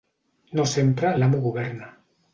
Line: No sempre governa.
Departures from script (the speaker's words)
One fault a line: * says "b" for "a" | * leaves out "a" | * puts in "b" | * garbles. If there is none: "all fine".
* puts in "l'amo"